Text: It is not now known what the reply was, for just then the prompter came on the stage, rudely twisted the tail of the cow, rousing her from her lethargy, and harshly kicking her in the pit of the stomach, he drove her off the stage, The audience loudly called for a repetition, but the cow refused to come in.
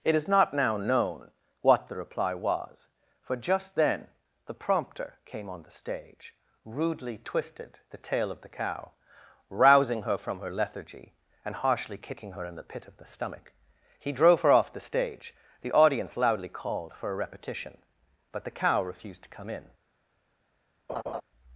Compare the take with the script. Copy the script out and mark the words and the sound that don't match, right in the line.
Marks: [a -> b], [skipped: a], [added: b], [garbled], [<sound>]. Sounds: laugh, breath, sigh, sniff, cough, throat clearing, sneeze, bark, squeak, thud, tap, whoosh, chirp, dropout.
It is not now known what the reply was, for just then the prompter came on the stage, rudely twisted the tail of the cow, rousing her from her lethargy, and harshly kicking her in the pit of the stomach, he drove her off the stage, The audience loudly called for a repetition, but the cow refused to come in. [laugh]